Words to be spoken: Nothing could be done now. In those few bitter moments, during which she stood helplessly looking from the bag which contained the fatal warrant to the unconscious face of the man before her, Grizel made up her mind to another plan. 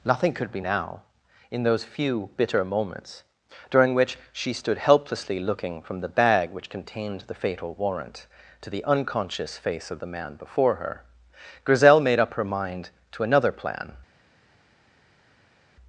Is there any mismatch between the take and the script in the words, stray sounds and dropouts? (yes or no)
yes